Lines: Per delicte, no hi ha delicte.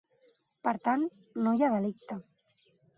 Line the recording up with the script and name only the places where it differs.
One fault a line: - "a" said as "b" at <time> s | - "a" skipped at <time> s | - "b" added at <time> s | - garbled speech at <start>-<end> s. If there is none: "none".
- "delicte" said as "tant" at 0.9 s